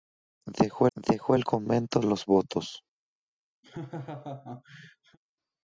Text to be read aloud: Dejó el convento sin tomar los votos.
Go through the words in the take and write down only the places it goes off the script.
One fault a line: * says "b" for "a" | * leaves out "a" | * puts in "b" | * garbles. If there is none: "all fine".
* puts in "dejó"
* leaves out "sin tomar"